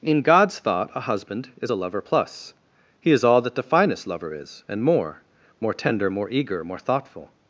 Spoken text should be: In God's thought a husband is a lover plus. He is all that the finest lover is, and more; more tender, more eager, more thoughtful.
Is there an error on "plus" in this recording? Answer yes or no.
no